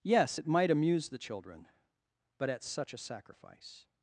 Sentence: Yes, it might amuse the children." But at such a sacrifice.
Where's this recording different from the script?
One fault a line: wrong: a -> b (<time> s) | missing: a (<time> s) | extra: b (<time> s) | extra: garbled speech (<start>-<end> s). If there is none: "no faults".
no faults